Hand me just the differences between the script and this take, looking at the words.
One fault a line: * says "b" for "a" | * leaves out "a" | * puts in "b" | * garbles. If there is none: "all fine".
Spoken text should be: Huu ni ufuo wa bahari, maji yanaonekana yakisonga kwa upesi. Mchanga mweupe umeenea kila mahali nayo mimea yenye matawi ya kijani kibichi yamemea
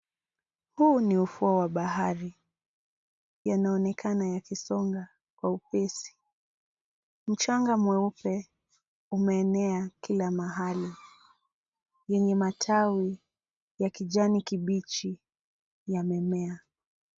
* leaves out "maji"
* leaves out "nayo mimea"